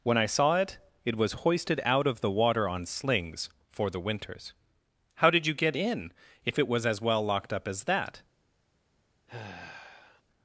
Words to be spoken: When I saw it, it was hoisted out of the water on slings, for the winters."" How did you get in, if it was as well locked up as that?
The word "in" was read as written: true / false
true